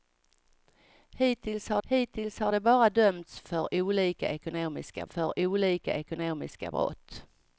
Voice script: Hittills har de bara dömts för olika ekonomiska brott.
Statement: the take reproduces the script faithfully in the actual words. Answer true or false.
false